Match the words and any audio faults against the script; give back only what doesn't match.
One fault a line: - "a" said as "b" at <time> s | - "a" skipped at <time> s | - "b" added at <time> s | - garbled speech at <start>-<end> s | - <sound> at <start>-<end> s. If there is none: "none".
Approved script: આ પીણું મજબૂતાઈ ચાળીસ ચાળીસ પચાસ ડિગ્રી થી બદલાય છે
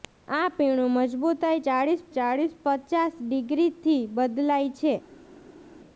none